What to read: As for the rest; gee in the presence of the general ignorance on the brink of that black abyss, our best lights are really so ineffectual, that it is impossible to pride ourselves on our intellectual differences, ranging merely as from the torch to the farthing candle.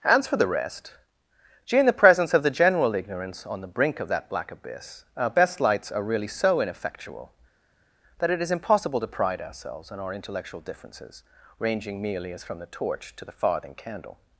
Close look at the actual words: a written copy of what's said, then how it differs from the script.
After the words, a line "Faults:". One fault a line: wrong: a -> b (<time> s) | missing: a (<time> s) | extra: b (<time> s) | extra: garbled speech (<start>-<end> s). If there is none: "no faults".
As for the rest; gee in the presence of the general ignorance on the brink of that black abyss, our best lights are really so ineffectual, that it is impossible to pride ourselves on our intellectual differences, ranging merely as from the torch to the farthing candle.
Faults:
no faults